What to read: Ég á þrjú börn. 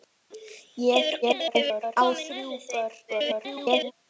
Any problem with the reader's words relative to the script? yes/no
yes